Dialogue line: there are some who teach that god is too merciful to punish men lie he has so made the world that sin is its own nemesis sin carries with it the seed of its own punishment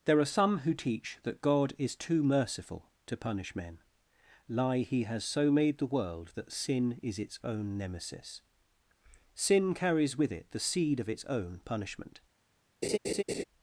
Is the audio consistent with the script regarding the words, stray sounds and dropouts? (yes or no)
no